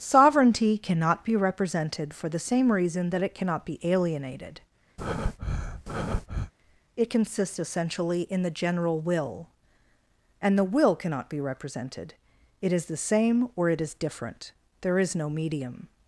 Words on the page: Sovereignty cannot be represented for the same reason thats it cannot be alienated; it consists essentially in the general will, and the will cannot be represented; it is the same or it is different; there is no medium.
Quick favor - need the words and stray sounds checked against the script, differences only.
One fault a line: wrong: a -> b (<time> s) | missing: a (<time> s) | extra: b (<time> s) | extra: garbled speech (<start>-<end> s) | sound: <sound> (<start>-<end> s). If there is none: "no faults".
wrong: thats -> that (3.1 s)
sound: breath (5.0-6.5 s)